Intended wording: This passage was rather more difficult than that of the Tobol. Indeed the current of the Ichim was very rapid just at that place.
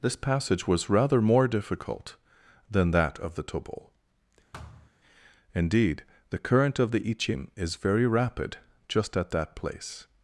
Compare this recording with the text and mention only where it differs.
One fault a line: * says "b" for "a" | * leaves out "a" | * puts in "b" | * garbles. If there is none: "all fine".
* says "is" for "was"